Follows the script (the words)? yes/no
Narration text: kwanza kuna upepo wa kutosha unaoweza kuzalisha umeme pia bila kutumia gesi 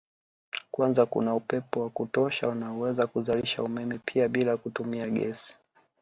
yes